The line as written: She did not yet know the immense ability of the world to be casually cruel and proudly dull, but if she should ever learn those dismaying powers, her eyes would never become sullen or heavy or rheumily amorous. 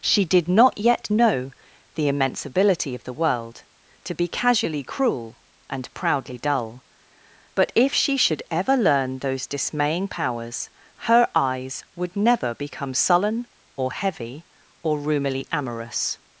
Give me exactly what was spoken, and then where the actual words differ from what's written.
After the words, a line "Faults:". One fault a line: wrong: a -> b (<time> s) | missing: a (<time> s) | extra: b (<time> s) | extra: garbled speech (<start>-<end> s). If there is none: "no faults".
She did not yet know the immense ability of the world to be casually cruel and proudly dull, but if she should ever learn those dismaying powers, her eyes would never become sullen or heavy or rheumily amorous.
Faults:
no faults